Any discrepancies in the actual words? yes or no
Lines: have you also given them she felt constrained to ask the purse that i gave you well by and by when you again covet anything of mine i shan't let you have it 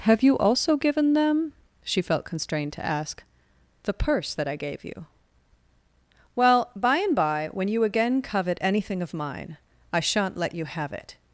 no